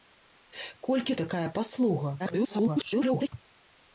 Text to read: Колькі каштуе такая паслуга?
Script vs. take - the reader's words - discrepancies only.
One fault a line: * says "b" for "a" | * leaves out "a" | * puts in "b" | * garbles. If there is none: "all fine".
* leaves out "каштуе"
* garbles